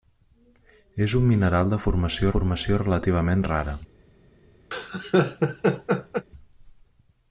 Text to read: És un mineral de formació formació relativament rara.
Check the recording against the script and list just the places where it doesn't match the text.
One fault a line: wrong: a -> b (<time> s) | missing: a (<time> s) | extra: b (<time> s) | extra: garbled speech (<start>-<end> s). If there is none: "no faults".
no faults